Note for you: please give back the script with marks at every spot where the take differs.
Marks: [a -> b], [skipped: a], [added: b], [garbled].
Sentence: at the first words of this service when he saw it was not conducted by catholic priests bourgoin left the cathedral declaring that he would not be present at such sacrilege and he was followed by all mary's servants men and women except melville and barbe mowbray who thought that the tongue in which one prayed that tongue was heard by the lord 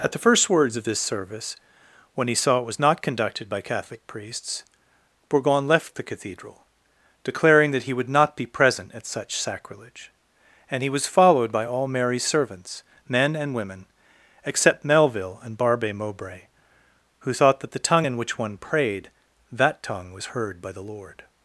at the first words of this service when he saw it was not conducted by catholic priests bourgoin left the cathedral declaring that he would not be present at such sacrilege and he was followed by all mary's servants men and women except melville and barbe mowbray who thought that the tongue in which one prayed that tongue was heard by the lord